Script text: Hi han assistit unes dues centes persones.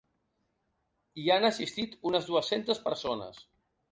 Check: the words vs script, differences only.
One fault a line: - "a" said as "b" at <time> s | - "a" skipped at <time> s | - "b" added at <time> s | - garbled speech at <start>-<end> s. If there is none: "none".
none